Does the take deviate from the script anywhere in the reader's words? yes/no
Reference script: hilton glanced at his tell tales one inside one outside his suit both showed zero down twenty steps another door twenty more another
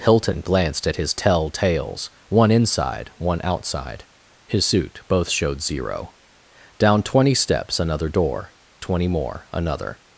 no